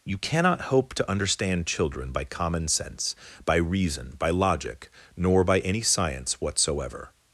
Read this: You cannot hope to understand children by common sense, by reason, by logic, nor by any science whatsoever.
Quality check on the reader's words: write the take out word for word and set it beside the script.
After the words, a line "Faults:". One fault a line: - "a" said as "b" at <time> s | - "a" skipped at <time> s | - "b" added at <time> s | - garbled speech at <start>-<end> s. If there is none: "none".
You cannot hope to understand children by common sense, by reason, by logic, nor by any science whatsoever.
Faults:
none